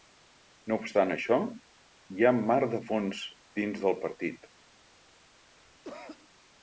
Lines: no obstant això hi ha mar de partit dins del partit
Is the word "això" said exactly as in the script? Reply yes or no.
yes